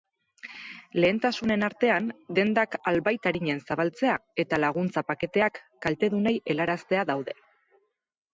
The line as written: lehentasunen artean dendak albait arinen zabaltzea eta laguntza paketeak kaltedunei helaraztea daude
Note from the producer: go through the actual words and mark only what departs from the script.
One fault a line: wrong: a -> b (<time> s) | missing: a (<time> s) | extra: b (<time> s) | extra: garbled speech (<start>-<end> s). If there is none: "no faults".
no faults